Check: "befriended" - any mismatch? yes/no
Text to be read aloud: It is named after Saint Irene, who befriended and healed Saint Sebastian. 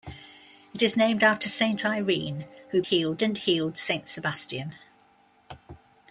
yes